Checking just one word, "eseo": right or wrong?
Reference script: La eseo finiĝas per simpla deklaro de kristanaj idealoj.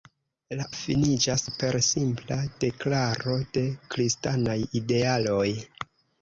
wrong